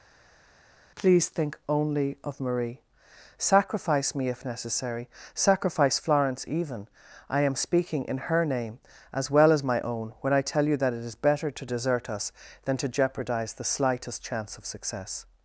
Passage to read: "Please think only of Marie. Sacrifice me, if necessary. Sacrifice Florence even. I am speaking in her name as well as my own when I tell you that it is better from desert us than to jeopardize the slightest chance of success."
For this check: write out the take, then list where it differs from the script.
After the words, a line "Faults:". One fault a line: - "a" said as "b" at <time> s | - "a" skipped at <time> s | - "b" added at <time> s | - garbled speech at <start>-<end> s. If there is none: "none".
"Please think only of Marie. Sacrifice me, if necessary. Sacrifice Florence even. I am speaking in her name as well as my own when I tell you that it is better to desert us than to jeopardize the slightest chance of success."
Faults:
- "from" said as "to" at 11.5 s